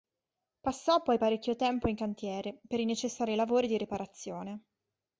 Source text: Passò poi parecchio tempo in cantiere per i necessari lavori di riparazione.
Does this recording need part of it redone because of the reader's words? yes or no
no